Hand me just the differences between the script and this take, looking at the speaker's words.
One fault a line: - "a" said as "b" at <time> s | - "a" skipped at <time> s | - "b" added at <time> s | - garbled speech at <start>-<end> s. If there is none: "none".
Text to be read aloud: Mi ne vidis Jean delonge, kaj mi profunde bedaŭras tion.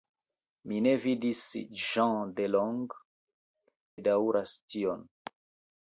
- "kaj mi profunde" skipped at 3.0 s